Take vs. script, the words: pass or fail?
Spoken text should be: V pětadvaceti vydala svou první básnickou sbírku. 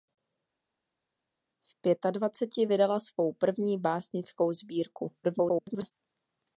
fail